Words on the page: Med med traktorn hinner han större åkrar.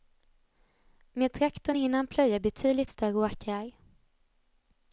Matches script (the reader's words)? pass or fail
fail